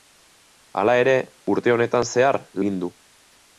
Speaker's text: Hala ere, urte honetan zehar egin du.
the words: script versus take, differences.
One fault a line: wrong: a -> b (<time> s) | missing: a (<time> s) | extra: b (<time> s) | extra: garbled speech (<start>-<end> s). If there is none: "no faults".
no faults